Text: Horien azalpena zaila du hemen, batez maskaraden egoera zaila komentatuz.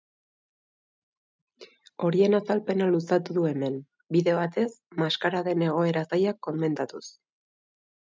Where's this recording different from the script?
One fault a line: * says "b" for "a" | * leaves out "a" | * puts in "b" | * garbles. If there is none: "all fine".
* says "luzatu" for "zaila"
* puts in "bide"